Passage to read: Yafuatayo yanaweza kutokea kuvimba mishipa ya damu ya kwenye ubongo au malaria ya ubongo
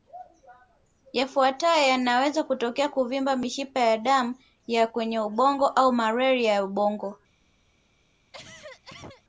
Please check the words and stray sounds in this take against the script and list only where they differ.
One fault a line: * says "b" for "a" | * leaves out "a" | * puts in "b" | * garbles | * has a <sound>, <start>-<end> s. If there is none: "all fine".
* has a cough, 8.3-9.2 s